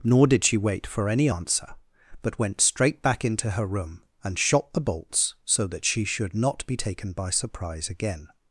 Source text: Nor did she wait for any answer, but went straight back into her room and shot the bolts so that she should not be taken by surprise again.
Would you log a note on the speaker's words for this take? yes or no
no